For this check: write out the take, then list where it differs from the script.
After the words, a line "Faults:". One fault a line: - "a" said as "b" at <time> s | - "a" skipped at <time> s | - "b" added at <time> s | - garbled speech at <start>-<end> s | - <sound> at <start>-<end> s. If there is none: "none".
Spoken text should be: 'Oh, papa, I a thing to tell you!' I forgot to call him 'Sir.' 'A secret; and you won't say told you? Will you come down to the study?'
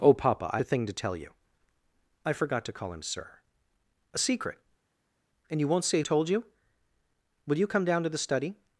'Oh, papa, I a thing to tell you!' I forgot to call him 'Sir.' 'A secret; and you won't say told you? Will you come down to the study?'
Faults:
none